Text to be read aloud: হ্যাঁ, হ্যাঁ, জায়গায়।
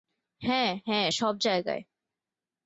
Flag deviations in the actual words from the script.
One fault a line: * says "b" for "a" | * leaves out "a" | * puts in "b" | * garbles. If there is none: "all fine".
* puts in "সব"